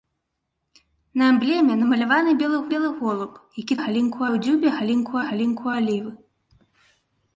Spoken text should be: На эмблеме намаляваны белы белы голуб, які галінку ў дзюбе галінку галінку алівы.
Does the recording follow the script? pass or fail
pass